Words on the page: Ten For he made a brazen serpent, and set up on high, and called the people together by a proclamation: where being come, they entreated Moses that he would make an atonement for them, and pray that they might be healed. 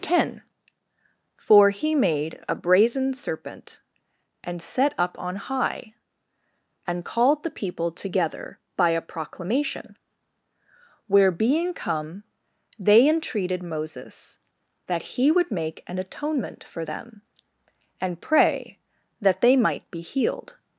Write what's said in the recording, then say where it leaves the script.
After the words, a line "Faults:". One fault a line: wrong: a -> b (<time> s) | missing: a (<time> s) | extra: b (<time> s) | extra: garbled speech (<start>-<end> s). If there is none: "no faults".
Ten For he made a brazen serpent, and set up on high, and called the people together by a proclamation: where being come, they entreated Moses that he would make an atonement for them, and pray that they might be healed.
Faults:
no faults